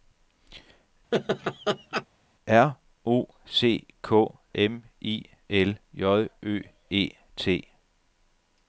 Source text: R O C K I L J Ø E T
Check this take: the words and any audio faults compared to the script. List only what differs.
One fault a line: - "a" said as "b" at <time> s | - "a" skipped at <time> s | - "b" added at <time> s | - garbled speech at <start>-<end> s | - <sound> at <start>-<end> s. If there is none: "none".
- laugh at 1.1-2.1 s
- "M" added at 4.5 s